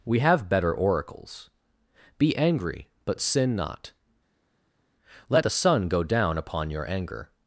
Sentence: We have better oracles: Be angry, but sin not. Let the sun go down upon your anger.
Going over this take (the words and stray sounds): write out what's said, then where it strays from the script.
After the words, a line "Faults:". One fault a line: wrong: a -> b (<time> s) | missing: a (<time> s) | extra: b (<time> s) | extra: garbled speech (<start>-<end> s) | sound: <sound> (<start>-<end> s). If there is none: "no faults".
We have better oracles: Be angry, but sin not. Let the sun go down upon your anger.
Faults:
no faults